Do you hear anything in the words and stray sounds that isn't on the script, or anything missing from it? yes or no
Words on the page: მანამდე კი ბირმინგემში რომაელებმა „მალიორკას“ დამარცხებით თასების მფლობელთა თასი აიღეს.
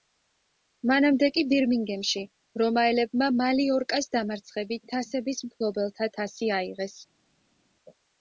no